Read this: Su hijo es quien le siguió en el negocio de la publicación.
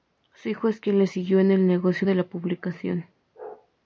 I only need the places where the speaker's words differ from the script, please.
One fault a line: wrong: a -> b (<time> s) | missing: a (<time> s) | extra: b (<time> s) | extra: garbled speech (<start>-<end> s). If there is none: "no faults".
no faults